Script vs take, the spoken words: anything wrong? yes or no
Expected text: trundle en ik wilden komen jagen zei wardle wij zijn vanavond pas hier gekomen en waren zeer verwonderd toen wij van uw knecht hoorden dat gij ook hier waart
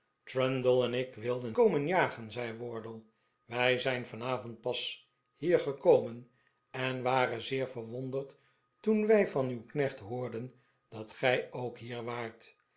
no